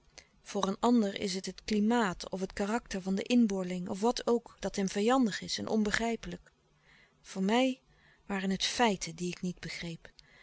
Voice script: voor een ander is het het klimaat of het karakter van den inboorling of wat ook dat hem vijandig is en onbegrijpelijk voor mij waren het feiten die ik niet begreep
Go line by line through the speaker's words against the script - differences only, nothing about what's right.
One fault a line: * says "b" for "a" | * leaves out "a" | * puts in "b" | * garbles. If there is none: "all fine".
all fine